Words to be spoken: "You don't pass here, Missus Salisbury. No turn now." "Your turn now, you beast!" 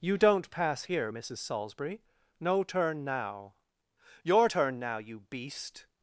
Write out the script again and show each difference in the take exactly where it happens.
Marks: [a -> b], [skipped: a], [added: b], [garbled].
"You don't pass here, Missus Salisbury. No turn now." "Your turn now, you beast!"